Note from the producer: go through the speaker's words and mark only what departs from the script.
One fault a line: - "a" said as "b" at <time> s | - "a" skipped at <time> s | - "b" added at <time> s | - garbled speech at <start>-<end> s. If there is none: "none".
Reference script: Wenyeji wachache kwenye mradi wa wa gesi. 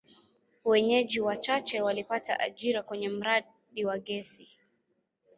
- "walipata ajira" added at 1.8 s
- "wa" skipped at 4.0 s